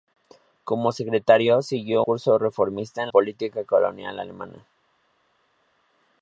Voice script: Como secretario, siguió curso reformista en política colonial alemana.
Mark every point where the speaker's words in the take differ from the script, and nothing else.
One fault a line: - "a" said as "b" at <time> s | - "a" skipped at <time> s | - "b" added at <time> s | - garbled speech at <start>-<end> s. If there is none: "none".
none